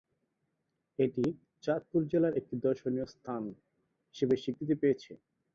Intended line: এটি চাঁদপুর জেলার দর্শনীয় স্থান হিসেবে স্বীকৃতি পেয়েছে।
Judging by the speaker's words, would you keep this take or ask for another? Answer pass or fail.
fail